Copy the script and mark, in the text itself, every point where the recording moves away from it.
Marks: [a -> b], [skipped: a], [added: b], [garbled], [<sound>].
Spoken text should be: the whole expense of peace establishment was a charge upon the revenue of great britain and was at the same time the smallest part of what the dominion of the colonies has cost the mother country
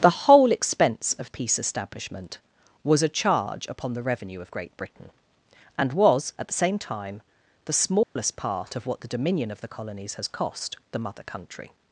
the whole expense of peace establishment was a charge upon the revenue of great britain and was at the same time the smallest [dropout] part of what the dominion of the colonies has cost the mother country